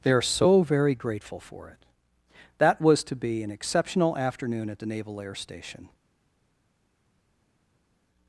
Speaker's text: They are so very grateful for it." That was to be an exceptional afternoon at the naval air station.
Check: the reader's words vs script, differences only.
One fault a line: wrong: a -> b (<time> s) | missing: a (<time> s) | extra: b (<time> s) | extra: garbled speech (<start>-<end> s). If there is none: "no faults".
no faults